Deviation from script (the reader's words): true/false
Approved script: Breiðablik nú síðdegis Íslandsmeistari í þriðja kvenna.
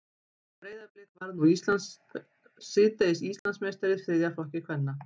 true